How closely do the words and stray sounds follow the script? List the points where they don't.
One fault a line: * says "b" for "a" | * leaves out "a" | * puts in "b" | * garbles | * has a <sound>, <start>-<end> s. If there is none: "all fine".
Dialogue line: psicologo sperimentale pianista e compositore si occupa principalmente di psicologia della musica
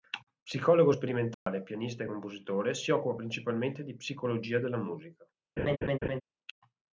* has a dropout, 1.3-1.5 s
* has a laugh, 5.6-6.2 s